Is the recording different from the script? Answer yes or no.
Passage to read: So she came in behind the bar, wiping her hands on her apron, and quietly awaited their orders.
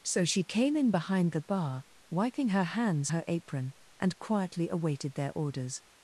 yes